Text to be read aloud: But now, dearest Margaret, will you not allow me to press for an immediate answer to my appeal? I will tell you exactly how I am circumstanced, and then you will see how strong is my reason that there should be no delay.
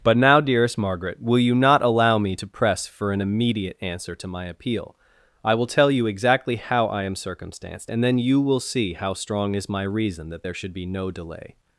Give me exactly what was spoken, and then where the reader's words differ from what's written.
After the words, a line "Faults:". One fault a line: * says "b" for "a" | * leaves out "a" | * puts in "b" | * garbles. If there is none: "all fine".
But now, dearest Margaret, will you not allow me to press for an immediate answer to my appeal? I will tell you exactly how I am circumstanced, and then you will see how strong is my reason that there should be no delay.
Faults:
all fine